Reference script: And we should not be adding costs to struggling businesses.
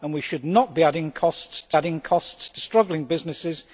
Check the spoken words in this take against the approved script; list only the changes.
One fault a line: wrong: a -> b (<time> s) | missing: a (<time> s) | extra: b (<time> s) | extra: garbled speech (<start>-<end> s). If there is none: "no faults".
extra: adding costs to (1.7 s)